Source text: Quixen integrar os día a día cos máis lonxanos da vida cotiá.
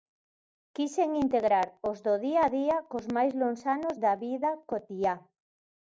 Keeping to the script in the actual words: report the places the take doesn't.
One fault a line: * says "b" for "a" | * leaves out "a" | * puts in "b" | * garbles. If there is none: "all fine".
* puts in "do"